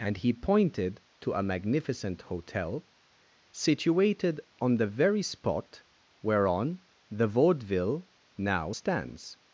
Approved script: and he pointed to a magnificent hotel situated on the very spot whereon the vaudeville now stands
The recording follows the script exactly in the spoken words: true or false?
true